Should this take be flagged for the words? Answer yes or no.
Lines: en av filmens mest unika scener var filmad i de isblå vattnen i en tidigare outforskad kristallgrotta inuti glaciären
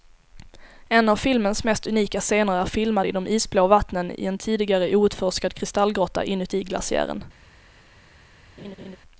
yes